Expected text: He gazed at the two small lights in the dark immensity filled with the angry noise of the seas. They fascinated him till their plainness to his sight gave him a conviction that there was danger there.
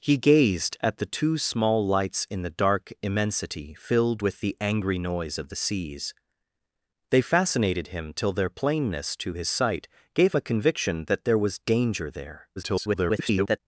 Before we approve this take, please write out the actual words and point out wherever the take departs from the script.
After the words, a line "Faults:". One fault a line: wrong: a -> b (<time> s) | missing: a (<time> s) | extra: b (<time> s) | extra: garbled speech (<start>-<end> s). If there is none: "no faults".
He gazed at the two small lights in the dark immensity filled with the angry noise of the seas. They fascinated him till their plainness to his sight gave a conviction that there was danger there. [garbled]
Faults:
missing: him (10.3 s)
extra: garbled speech (12.6-13.6 s)